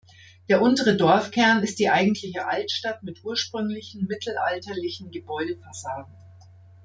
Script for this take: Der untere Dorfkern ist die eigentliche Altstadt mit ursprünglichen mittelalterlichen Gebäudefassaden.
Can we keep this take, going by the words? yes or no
yes